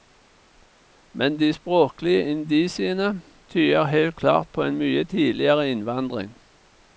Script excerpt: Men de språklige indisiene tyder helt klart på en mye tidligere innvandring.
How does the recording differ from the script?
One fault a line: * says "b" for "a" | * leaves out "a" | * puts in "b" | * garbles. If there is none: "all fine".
all fine